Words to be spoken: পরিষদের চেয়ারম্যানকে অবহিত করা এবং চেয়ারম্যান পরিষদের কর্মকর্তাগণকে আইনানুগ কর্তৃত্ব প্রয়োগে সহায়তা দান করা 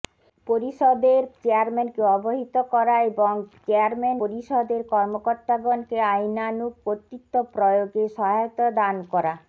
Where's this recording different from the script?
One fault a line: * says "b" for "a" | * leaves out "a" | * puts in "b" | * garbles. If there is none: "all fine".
all fine